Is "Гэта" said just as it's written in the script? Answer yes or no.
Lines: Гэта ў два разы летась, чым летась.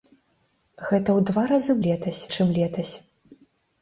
yes